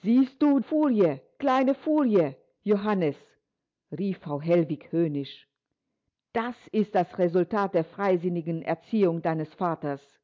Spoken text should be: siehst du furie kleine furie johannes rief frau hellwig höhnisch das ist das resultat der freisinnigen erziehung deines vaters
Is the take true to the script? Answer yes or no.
yes